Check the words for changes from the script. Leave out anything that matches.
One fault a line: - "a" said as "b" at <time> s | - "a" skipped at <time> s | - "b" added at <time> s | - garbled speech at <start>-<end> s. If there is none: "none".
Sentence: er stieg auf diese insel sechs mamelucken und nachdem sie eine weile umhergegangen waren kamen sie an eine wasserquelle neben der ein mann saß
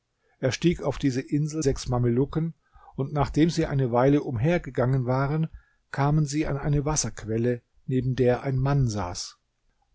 none